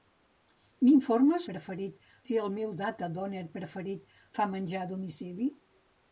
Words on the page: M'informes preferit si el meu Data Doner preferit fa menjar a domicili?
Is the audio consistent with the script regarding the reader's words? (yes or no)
yes